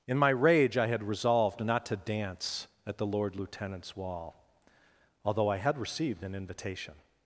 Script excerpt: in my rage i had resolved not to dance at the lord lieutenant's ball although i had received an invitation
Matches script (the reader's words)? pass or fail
fail